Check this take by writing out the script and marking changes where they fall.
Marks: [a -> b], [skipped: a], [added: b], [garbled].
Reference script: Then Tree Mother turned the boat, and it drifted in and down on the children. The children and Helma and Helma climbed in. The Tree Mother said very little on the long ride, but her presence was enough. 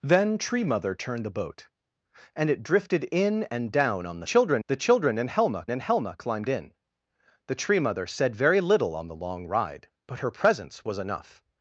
Then Tree Mother turned the boat, and it drifted in and down on the children. The children and Helma and Helma climbed in. The Tree Mother said very little on the long ride, but her presence was enough.